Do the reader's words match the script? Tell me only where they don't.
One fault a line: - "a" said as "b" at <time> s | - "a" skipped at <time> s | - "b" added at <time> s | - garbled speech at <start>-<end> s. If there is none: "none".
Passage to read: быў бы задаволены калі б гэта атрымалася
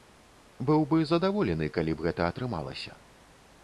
none